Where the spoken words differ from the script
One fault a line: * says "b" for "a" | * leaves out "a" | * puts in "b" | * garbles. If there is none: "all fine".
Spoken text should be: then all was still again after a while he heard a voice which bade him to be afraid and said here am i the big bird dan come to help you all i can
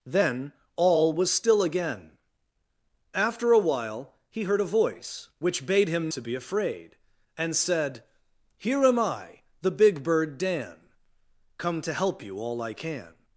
all fine